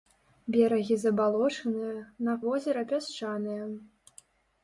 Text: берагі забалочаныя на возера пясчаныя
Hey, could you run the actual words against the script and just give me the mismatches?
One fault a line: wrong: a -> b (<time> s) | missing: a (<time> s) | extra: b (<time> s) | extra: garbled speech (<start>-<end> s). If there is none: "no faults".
no faults